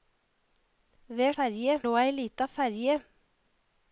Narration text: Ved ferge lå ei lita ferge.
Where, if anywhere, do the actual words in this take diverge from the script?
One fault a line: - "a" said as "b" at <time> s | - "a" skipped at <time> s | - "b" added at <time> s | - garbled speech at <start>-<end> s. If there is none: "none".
none